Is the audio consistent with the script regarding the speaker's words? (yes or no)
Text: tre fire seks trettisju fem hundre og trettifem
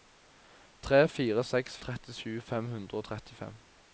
yes